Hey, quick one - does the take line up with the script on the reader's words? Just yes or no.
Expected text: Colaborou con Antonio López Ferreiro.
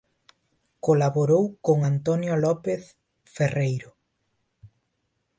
yes